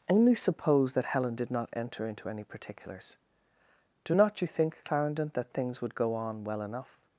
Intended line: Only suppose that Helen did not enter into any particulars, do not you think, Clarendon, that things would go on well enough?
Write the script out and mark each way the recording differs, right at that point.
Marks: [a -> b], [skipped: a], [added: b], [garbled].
Only suppose that Helen did not enter into any particulars, do not you think, Clarendon, that things would go on well enough?